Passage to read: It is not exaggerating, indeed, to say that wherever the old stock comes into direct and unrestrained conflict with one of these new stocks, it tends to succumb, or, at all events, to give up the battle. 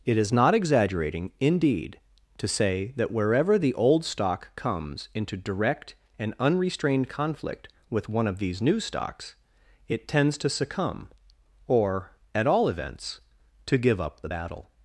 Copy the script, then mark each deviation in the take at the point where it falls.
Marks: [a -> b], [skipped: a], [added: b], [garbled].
It is not exaggerating, indeed, to say that wherever the old stock comes into direct and unrestrained conflict with one of these new stocks, it tends to succumb, or, at all events, to give up the battle.